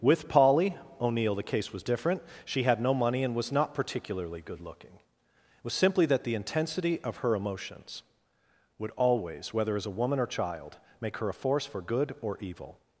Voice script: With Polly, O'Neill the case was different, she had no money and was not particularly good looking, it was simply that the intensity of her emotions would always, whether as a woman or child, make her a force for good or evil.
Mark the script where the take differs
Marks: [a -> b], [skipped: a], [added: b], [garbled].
With Polly, O'Neill the case was different, she had no money and was not particularly good looking, it was simply that the intensity of her emotions would always, whether as a woman or child, make her a force for good or evil.